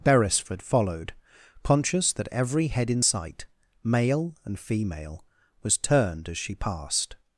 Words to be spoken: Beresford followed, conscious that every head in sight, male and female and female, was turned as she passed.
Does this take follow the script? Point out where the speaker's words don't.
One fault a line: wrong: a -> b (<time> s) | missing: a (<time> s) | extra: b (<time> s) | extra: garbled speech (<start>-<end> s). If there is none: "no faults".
missing: and female (5.2 s)